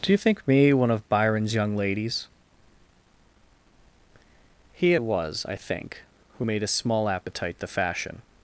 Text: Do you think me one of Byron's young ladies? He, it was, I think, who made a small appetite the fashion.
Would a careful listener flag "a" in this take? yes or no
no